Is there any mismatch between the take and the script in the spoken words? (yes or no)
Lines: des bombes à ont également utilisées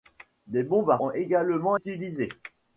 no